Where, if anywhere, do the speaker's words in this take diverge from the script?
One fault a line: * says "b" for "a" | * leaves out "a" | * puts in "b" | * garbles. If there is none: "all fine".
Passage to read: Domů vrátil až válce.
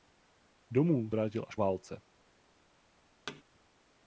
all fine